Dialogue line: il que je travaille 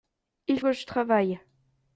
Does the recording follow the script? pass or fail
pass